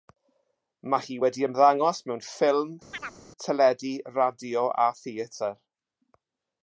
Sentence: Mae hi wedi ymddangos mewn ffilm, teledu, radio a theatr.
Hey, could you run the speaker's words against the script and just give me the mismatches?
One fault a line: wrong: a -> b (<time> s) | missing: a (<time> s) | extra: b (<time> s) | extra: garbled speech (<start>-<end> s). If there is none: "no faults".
no faults